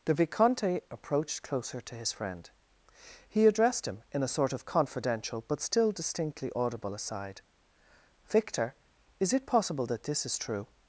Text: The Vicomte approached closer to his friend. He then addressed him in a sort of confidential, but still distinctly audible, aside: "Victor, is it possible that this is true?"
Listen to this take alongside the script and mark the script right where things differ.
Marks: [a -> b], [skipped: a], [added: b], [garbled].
The Vicomte approached closer to his friend. He [skipped: then] addressed him in a sort of confidential, but still distinctly audible, aside: "Victor, is it possible that this is true?"